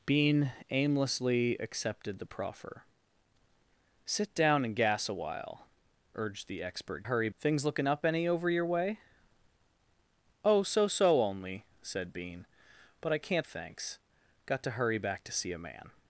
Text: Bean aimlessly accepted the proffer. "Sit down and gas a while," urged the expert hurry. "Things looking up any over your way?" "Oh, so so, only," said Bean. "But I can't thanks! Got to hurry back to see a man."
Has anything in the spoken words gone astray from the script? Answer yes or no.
no